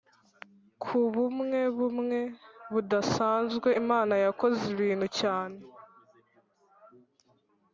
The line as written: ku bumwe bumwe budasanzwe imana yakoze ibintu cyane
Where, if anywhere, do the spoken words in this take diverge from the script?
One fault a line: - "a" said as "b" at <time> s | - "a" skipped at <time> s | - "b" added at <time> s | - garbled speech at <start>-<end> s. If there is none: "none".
none